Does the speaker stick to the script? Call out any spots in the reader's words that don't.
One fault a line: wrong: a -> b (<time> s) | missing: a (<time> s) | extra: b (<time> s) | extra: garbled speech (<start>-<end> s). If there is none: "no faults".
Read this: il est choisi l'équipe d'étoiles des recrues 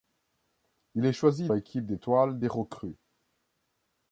no faults